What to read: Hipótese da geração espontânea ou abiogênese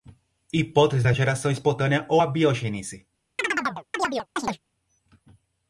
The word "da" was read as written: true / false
true